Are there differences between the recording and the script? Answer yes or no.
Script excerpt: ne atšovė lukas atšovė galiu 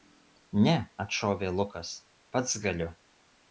yes